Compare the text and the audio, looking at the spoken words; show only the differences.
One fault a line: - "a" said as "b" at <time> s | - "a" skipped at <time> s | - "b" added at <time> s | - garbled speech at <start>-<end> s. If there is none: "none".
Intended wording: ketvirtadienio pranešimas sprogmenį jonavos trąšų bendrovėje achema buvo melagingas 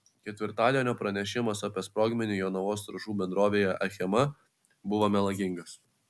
- "apie" added at 1.7 s